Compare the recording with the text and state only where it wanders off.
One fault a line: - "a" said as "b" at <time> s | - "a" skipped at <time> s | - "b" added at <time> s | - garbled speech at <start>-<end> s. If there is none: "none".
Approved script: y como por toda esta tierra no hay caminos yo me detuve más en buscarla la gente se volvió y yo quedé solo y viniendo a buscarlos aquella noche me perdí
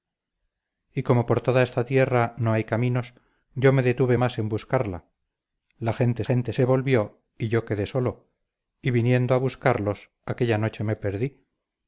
- "gente" added at 6.2 s